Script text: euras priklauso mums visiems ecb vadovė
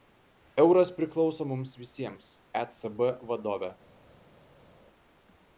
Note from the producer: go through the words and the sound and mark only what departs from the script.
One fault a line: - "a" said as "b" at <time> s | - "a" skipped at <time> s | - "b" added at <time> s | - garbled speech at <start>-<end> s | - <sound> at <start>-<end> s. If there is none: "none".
none